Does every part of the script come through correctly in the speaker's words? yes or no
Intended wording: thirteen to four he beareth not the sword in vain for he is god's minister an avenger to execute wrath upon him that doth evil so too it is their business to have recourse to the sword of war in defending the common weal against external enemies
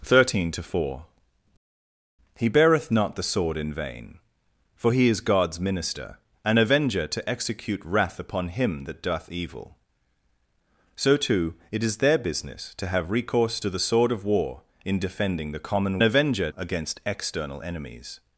no